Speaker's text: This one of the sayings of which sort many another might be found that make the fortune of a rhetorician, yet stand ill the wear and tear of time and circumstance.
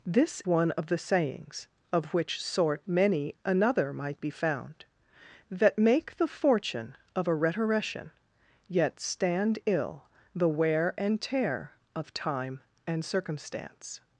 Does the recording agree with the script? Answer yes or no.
yes